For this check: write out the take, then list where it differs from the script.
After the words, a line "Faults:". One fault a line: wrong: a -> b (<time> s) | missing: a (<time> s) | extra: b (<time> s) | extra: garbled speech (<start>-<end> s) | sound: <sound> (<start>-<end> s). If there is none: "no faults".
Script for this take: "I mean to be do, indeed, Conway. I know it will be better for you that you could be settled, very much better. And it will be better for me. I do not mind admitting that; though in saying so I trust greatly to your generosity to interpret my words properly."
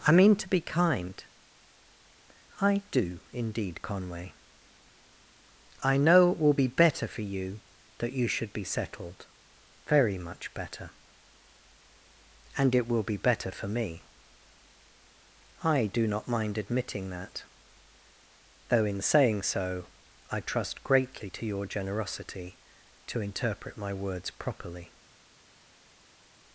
"I mean to be kind. I do, indeed, Conway. I know it will be better for you that you should be settled, very much better. And it will be better for me. I do not mind admitting that; though in saying so I trust greatly to your generosity to interpret my words properly."
Faults:
extra: kind I (0.6 s)
wrong: could -> should (8.3 s)